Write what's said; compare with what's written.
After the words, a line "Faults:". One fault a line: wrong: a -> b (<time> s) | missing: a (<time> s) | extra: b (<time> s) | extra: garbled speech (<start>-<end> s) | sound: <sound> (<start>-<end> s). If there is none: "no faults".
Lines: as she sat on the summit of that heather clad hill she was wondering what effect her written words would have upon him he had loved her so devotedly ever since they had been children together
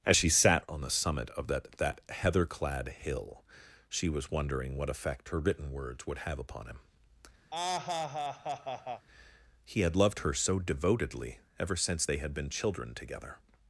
as she sat on the summit of that that heather clad hill she was wondering what effect her written words would have upon him he had loved her so devotedly ever since they had been children together
Faults:
extra: that (1.7 s)
sound: laugh (7.5-9.1 s)